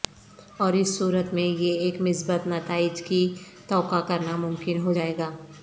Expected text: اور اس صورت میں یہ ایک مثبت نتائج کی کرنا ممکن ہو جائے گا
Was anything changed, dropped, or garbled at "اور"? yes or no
no